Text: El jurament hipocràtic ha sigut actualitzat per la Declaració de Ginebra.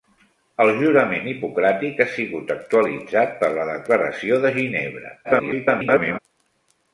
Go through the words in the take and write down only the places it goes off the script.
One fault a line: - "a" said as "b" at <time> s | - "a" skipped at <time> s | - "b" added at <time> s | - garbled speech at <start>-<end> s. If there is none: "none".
- garbled speech at 5.2-6.2 s